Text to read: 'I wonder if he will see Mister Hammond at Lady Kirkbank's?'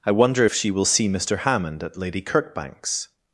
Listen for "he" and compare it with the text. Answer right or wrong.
wrong